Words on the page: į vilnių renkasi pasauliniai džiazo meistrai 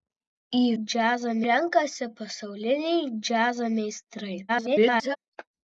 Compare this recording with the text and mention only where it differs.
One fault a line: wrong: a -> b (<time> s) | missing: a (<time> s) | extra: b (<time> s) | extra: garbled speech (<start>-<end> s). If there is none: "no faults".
wrong: vilnių -> džiazo (0.8 s)
extra: garbled speech (4.5-5.2 s)